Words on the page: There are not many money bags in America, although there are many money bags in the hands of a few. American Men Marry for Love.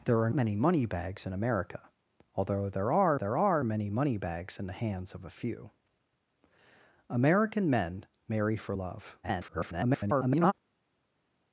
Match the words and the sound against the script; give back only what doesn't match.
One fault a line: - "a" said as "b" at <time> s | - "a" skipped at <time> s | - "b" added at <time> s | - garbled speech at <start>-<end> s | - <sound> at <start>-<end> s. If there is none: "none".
- "not" skipped at 0.3 s
- "there are" added at 3.1 s
- garbled speech at 9.2-10.5 s